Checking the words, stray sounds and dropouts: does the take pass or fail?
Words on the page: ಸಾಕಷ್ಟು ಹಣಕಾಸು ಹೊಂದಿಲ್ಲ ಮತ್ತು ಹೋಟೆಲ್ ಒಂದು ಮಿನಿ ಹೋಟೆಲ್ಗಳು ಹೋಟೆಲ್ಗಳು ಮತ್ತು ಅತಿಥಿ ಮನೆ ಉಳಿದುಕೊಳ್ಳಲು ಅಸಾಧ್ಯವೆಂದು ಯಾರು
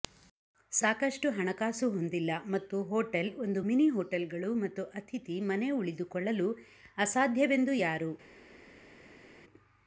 fail